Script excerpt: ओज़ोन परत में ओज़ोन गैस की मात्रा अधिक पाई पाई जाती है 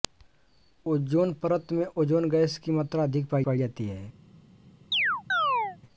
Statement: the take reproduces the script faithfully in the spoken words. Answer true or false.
true